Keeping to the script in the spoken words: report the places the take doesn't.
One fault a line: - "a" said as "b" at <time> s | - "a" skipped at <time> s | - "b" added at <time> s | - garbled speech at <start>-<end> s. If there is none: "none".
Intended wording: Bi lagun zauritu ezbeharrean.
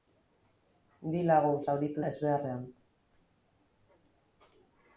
none